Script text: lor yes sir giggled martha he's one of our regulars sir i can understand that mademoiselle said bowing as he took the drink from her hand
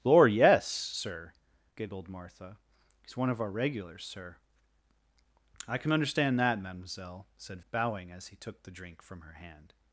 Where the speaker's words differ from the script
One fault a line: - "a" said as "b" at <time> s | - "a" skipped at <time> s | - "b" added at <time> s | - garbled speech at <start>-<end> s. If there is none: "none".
none